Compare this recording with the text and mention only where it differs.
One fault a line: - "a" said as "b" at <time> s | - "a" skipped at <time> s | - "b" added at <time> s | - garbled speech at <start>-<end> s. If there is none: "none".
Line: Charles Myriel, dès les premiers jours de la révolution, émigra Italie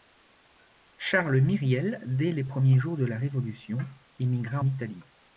none